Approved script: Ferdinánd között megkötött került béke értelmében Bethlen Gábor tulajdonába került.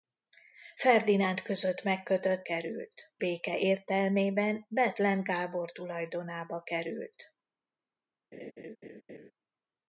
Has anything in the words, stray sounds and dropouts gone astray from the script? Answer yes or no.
yes